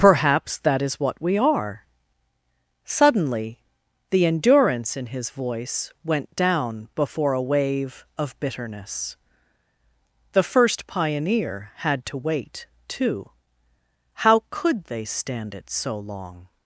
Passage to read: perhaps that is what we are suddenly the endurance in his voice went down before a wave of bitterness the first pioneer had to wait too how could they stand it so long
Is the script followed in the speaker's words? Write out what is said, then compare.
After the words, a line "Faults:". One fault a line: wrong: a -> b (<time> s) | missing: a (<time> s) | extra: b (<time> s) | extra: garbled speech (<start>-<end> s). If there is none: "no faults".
perhaps that is what we are suddenly the endurance in his voice went down before a wave of bitterness the first pioneer had to wait too how could they stand it so long
Faults:
no faults